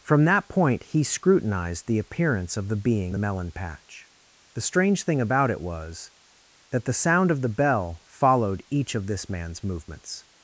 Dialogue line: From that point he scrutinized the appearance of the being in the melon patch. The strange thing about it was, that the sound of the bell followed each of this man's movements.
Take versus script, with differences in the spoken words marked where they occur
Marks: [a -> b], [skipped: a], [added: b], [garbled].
From that point he scrutinized the appearance of the being [skipped: in] the melon patch. The strange thing about it was, that the sound of the bell followed each of this man's movements.